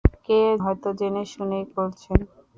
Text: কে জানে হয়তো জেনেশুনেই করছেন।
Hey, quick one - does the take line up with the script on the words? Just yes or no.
no